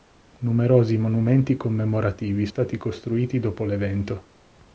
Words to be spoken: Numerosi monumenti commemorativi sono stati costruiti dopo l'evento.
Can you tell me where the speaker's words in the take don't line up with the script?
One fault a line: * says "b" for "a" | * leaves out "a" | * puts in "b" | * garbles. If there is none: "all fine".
* leaves out "sono"